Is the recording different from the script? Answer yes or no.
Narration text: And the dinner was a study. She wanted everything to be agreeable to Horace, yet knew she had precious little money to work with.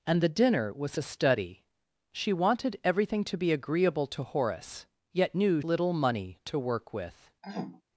yes